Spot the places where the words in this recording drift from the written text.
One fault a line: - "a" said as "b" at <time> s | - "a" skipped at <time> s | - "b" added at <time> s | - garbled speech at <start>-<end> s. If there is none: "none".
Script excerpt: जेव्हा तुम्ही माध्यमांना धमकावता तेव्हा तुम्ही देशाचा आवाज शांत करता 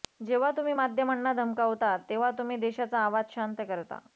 none